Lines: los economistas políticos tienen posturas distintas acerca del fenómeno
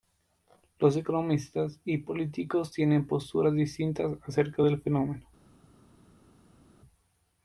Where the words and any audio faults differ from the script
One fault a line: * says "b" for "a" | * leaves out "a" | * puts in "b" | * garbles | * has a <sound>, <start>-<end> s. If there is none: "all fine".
* puts in "y"